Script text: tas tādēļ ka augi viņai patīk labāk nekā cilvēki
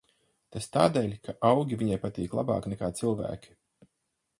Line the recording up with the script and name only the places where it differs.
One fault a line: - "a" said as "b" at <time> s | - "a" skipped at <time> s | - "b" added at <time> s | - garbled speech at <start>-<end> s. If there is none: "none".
none